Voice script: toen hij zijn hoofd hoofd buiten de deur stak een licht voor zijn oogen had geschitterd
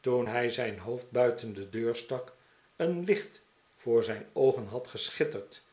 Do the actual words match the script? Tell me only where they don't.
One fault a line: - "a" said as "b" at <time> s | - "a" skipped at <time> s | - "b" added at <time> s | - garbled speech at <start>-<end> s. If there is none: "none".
- "hoofd" skipped at 1.1 s